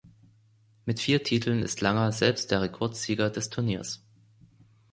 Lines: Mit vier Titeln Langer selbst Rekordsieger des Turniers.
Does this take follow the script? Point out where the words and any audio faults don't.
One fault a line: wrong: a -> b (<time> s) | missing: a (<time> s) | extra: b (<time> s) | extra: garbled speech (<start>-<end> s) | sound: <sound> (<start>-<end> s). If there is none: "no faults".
extra: ist (1.6 s)
extra: der (2.5 s)